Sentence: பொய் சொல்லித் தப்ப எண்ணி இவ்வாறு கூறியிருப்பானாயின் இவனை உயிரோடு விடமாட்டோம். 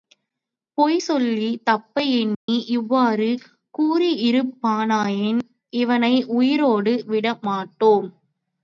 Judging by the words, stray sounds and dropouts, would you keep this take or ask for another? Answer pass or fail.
fail